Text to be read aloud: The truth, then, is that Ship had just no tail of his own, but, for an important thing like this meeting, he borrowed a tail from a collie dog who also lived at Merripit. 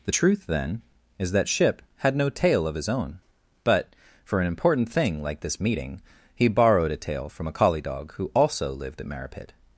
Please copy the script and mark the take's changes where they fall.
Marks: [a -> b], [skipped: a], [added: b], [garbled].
The truth, then, is that Ship had [skipped: just] no tail of his own, but, for an important thing like this meeting, he borrowed a tail from a collie dog who also lived at Merripit.